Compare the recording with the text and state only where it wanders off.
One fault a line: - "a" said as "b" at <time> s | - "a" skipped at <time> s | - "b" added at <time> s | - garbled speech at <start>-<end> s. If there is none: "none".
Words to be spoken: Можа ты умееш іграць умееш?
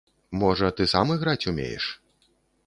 - "умееш" said as "сам" at 0.9 s